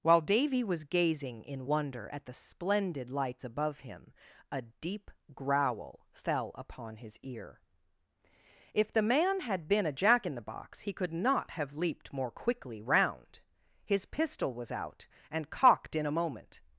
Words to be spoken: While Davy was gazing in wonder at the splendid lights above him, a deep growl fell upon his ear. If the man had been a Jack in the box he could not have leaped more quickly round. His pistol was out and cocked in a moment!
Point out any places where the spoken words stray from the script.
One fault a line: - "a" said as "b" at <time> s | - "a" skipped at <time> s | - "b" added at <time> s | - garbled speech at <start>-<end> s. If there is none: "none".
none